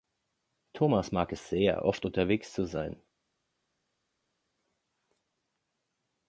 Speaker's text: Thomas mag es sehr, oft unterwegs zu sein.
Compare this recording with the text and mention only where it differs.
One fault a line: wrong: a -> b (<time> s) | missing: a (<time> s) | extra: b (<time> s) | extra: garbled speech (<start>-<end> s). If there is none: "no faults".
no faults